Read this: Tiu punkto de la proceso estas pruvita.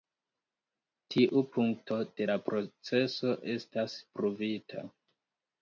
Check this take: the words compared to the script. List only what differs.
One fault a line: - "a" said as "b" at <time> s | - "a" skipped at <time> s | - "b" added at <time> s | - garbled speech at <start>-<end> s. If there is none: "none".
none